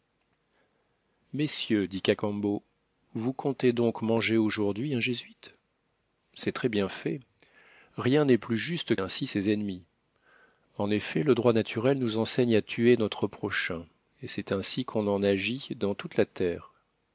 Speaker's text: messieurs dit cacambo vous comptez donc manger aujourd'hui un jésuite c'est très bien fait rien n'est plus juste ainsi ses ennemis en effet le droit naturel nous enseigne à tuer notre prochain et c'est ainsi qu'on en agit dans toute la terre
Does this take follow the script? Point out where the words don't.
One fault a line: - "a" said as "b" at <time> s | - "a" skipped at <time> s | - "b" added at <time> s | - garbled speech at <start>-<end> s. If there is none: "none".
none